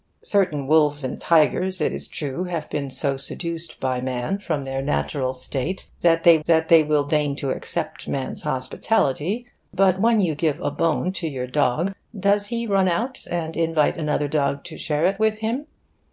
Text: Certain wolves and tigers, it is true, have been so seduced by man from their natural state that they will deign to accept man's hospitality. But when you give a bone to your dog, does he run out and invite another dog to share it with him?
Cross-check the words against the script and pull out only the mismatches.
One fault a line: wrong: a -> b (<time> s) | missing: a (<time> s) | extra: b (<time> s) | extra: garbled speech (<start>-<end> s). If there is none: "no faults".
extra: that they (6.5 s)